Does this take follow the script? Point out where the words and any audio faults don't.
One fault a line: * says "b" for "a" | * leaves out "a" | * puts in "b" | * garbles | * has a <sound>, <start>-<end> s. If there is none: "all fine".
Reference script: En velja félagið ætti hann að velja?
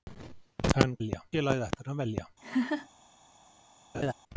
* has a laugh, 2.4-2.9 s
* has a laugh, 3.9-4.1 s